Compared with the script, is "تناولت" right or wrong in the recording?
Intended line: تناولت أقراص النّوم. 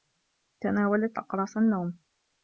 right